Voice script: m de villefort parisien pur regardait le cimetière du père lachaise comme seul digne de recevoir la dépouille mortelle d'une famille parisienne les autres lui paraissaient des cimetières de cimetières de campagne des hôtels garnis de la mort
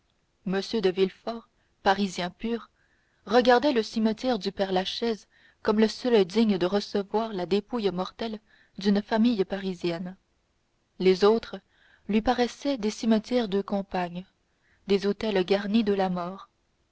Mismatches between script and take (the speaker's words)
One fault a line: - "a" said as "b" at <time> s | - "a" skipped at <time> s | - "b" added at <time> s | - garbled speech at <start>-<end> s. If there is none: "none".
- "le" added at 5.8 s
- "cimetières de" skipped at 13.6 s